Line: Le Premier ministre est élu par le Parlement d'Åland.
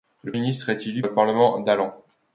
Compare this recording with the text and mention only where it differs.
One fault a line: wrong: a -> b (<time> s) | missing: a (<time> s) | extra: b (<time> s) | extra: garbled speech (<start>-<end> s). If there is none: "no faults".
missing: Premier (0.3 s)
missing: par (1.0 s)